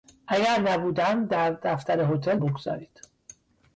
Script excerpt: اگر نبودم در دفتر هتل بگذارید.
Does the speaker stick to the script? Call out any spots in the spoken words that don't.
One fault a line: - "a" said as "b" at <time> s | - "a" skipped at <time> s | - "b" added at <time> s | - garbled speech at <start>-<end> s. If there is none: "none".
none